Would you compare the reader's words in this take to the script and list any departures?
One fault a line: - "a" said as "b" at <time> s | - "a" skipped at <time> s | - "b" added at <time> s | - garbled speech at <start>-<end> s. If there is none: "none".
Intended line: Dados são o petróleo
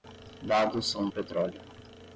none